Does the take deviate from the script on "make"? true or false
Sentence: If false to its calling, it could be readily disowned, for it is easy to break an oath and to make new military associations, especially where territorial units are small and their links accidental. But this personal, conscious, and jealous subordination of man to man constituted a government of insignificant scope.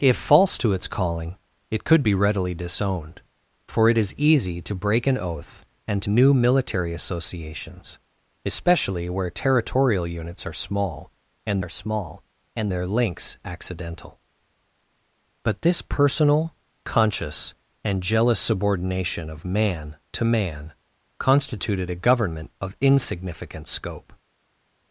true